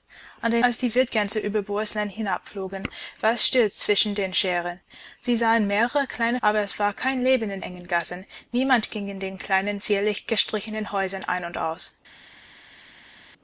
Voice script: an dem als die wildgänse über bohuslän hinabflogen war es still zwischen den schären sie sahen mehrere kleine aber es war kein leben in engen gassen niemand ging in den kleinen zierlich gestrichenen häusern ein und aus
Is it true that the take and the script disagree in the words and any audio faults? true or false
false